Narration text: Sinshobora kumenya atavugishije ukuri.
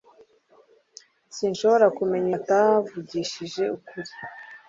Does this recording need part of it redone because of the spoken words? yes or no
no